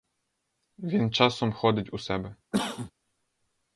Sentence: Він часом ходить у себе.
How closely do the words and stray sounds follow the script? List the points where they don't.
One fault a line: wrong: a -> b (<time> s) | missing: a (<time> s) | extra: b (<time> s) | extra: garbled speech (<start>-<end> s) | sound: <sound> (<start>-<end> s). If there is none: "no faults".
sound: cough (2.5-2.9 s)